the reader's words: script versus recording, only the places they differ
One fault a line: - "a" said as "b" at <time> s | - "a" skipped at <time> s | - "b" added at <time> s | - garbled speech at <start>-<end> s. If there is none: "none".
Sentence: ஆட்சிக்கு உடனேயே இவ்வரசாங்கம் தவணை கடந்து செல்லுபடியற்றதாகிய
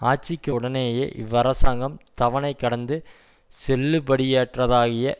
none